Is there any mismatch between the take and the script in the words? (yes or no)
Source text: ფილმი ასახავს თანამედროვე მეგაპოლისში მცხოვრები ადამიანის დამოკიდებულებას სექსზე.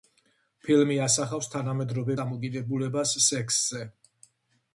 yes